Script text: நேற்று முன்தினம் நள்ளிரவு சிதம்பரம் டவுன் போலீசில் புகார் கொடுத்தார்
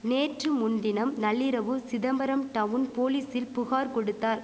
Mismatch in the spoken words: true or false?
false